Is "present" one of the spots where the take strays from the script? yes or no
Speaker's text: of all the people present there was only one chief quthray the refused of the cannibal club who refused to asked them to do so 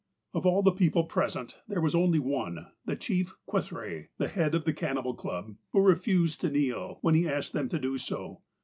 no